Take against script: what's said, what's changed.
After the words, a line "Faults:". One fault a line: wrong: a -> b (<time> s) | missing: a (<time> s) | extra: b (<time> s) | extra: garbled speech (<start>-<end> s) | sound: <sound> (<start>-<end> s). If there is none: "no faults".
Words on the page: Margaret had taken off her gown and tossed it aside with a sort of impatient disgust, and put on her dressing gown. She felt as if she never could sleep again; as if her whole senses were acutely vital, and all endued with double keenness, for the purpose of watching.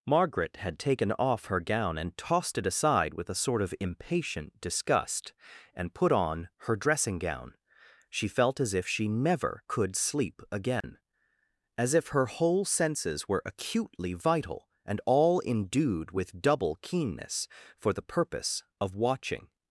Margaret had taken off her gown and tossed it aside with a sort of impatient disgust, and put on her dressing gown. She felt as if she never could sleep again; as if her whole senses were acutely vital, and all endued with double keenness, for the purpose of watching.
Faults:
sound: dropout (10.8-10.8 s)